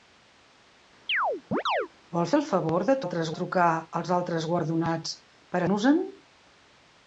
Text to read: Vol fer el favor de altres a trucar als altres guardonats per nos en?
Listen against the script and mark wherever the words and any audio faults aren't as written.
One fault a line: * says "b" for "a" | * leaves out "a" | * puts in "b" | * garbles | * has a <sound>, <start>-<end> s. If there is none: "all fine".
* has a chirp, 1.1-1.9 s